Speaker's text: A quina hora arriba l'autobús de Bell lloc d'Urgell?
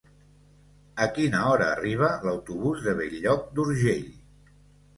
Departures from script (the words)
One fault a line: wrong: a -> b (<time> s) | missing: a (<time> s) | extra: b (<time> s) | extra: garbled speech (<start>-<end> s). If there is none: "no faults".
no faults